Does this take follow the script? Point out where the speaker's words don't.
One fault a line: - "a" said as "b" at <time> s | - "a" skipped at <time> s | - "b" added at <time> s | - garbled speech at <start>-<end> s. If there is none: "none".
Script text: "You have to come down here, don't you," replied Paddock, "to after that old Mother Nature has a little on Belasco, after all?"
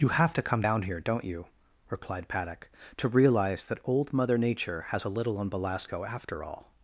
- "after" said as "realize" at 3.1 s